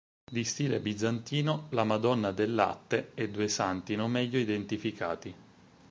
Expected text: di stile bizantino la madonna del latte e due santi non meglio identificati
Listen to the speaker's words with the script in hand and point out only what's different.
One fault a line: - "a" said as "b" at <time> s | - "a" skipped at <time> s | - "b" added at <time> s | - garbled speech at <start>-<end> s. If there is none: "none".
none